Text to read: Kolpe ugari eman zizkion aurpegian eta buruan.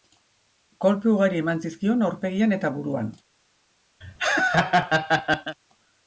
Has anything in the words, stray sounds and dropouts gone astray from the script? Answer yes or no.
yes